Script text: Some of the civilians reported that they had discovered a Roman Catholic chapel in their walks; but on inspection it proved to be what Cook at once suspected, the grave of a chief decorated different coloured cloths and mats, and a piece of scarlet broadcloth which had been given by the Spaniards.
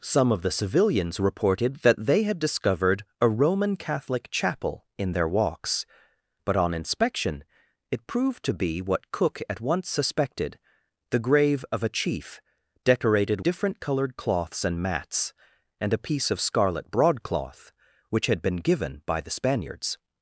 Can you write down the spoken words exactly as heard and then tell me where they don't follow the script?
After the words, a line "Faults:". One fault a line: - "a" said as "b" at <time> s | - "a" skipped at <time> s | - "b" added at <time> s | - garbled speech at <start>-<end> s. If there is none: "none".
Some of the civilians reported that they had discovered a Roman Catholic chapel in their walks; but on inspection it proved to be what Cook at once suspected, the grave of a chief decorated different coloured cloths and mats, and a piece of scarlet broadcloth which had been given by the Spaniards.
Faults:
none